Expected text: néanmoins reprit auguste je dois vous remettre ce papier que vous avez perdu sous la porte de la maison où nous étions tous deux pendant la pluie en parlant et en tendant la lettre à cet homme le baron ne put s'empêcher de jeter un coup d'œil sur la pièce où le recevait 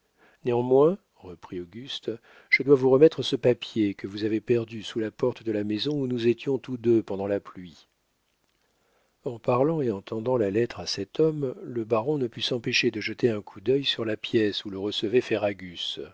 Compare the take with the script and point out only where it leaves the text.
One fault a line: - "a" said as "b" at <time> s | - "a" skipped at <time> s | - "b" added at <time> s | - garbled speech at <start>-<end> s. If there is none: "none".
none